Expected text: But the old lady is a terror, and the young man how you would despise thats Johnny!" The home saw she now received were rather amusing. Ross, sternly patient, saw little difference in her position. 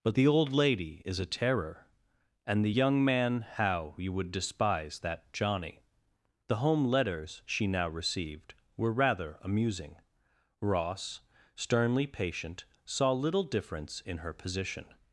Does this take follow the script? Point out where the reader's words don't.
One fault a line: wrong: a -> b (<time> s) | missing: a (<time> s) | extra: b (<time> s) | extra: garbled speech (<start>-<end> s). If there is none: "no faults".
wrong: thats -> that (5.0 s)
wrong: saw -> letters (6.9 s)